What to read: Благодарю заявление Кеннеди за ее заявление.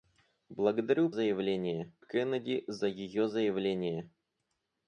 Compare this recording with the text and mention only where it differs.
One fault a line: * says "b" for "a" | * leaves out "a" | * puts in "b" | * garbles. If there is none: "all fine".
all fine